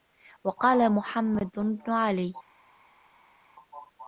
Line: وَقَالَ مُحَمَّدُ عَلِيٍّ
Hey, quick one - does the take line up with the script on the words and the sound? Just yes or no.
no